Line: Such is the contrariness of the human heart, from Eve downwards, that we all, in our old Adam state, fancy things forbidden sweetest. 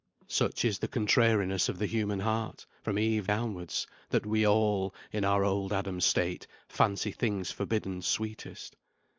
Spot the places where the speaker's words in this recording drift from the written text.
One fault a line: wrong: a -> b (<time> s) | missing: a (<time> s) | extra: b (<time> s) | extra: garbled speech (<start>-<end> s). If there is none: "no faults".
no faults